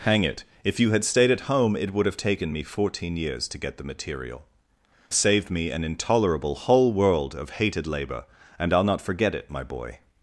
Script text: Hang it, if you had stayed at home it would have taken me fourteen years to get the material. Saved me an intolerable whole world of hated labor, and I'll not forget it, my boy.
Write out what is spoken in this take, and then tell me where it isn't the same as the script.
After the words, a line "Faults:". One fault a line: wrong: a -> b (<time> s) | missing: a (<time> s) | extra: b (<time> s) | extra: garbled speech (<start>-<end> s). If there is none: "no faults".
Hang it, if you had stayed at home it would have taken me fourteen years to get the material. Saved me an intolerable whole world of hated labor, and I'll not forget it, my boy.
Faults:
no faults